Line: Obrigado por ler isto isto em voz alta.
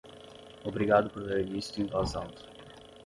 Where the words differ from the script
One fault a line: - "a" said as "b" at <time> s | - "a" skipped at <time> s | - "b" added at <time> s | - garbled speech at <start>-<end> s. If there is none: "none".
- "isto" skipped at 1.8 s